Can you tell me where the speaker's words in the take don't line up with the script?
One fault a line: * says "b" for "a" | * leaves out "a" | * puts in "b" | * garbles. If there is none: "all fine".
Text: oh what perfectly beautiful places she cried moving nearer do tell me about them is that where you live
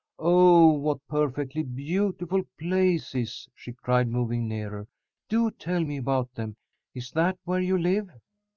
all fine